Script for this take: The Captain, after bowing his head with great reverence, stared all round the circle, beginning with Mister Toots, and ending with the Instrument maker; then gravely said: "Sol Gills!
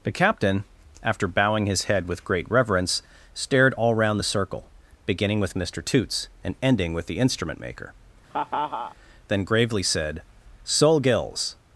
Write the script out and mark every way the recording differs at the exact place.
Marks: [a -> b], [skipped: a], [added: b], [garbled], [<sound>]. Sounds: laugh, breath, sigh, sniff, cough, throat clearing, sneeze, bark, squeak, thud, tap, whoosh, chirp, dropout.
The Captain, after bowing his head with great reverence, stared all round the circle, beginning with Mister Toots, and ending with the Instrument maker; [laugh] then gravely said: "Sol Gills!